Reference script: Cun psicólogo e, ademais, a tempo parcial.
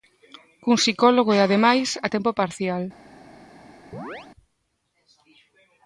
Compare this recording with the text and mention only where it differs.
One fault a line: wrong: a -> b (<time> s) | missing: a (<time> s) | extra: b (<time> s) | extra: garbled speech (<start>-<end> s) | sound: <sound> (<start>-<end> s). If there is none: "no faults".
sound: chirp (3.9-4.3 s)